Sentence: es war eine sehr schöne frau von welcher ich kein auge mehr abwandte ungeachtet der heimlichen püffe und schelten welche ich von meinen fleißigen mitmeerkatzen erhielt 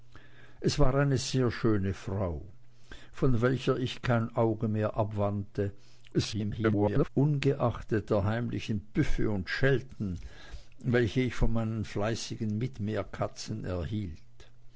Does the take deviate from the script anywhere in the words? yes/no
yes